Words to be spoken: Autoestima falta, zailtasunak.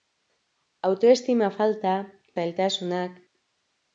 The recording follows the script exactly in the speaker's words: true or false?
true